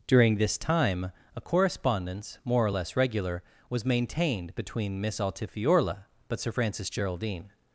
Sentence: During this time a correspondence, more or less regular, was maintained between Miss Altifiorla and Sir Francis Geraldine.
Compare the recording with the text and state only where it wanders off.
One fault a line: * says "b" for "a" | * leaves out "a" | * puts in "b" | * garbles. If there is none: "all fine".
* says "but" for "and"